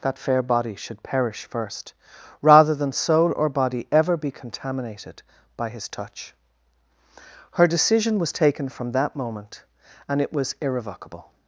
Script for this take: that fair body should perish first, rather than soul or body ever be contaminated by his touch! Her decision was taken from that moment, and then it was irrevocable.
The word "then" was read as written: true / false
false